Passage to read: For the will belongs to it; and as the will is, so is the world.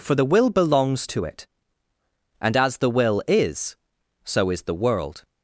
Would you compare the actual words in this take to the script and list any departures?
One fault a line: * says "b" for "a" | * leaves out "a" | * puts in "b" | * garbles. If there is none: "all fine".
all fine